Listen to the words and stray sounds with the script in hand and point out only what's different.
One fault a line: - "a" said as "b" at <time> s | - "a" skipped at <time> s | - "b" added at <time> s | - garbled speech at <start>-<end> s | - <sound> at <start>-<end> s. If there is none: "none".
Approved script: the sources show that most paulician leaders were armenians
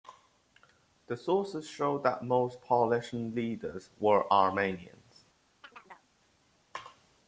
- chirp at 5.6-6.1 s